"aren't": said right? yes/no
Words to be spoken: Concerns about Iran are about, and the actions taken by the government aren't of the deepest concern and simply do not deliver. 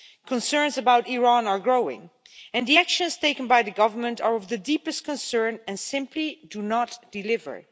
no